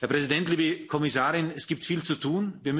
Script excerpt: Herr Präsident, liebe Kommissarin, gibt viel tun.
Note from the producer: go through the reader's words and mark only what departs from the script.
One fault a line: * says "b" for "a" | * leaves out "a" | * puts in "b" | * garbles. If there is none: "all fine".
* puts in "es"
* puts in "zu"